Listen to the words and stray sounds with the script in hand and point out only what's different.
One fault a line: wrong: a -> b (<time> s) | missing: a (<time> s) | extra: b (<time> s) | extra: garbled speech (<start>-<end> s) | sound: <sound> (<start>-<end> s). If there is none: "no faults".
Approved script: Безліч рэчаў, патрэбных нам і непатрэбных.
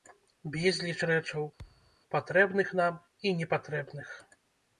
sound: thud (1.6-2.0 s)